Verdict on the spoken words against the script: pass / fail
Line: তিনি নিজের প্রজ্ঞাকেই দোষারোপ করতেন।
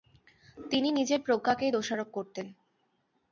pass